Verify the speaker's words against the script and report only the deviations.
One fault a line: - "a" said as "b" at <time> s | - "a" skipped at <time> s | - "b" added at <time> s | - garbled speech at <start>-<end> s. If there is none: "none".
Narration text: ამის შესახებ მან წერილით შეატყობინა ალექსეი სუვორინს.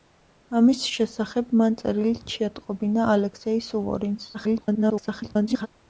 - garbled speech at 4.3-5.7 s